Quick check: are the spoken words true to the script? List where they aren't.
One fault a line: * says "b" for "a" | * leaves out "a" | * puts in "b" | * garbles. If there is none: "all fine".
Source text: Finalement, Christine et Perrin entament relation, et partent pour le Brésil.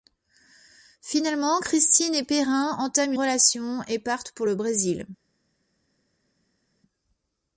all fine